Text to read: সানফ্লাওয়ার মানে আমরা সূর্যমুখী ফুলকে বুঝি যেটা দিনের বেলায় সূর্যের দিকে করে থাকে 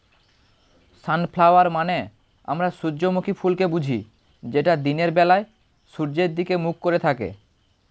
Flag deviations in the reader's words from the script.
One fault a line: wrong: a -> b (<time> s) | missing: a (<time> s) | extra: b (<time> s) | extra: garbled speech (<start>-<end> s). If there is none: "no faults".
extra: মুখ (6.6 s)